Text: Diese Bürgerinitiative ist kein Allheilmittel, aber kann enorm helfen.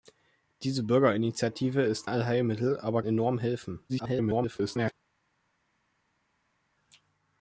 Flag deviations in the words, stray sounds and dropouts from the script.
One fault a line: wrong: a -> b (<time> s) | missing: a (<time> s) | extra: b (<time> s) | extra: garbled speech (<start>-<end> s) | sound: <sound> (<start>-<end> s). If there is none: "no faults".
missing: kein (2.1 s)
missing: kann (3.0 s)
extra: garbled speech (3.9-4.9 s)